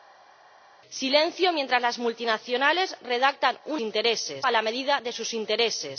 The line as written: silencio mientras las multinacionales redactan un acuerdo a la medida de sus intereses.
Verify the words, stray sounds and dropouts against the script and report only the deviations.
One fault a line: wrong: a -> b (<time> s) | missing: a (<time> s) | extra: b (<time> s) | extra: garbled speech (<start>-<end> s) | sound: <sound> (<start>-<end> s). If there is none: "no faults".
wrong: acuerdo -> intereses (3.8 s)